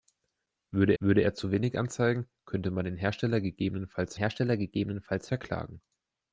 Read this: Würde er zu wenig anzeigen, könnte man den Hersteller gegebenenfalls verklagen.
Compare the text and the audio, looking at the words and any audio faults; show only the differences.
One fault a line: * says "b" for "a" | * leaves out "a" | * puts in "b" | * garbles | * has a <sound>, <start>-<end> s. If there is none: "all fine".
* puts in "würde"
* puts in "Hersteller gegebenenfalls"